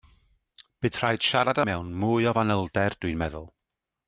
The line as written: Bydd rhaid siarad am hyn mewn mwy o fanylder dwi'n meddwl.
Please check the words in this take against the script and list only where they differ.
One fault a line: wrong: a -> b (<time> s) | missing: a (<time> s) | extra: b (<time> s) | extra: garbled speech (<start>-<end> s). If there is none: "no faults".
missing: am hyn (1.6 s)